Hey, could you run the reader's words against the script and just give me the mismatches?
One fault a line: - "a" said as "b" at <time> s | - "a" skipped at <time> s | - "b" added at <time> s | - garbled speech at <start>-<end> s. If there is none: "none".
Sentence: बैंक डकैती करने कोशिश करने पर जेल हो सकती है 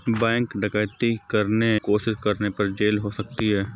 none